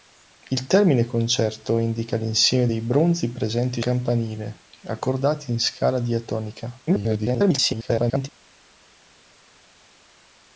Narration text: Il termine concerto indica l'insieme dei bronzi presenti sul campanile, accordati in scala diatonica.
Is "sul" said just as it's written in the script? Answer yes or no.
no